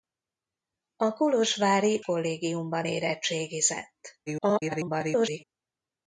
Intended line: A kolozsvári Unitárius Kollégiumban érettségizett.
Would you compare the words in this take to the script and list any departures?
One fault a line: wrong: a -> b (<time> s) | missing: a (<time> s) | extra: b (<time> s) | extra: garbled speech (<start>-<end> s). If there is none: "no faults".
missing: Unitárius (2.0 s)
extra: garbled speech (4.3-5.4 s)